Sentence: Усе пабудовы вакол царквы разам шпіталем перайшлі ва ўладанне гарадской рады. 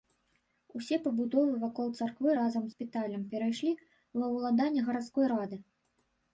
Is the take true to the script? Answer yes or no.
yes